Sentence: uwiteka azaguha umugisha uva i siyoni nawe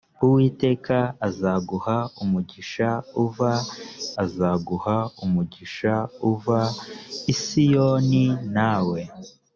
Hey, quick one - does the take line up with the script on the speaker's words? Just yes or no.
no